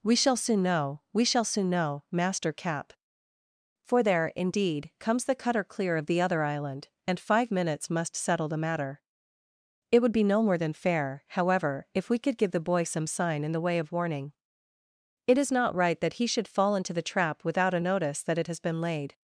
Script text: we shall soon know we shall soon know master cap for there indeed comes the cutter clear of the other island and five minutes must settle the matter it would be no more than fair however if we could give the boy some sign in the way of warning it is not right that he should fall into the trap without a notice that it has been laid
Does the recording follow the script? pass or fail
pass